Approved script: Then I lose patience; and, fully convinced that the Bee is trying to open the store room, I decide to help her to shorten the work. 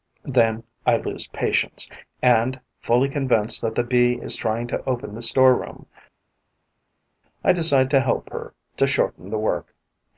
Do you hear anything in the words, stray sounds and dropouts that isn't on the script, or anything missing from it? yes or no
no